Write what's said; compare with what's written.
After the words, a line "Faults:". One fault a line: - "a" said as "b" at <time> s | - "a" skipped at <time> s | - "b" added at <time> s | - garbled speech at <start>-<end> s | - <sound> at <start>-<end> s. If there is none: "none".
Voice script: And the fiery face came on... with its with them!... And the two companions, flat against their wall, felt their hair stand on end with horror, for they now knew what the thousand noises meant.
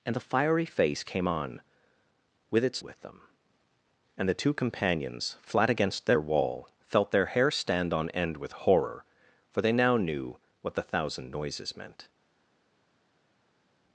And the fiery face came on... with its with them!... And the two companions, flat against their wall, felt their hair stand on end with horror, for they now knew what the thousand noises meant.
Faults:
none